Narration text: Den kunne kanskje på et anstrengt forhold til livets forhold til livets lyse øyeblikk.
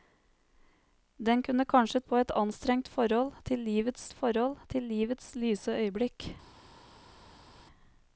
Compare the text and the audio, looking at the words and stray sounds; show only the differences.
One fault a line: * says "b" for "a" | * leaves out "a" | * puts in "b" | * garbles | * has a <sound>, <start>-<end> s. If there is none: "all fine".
all fine